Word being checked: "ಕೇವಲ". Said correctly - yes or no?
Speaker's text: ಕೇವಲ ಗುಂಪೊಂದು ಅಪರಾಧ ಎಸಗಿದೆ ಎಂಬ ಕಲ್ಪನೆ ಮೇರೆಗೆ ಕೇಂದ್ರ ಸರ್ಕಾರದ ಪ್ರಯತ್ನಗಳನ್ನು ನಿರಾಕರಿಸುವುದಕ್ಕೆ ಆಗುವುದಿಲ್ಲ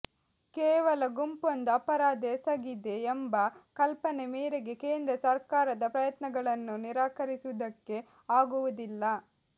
yes